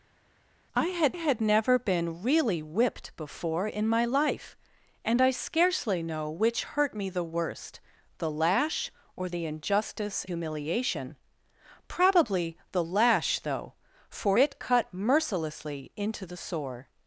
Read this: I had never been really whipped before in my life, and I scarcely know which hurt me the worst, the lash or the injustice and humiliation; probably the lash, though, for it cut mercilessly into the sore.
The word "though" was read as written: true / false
true